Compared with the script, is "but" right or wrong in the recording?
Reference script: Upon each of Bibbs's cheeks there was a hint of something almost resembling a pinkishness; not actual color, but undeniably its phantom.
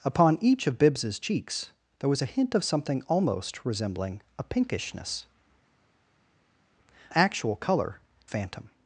wrong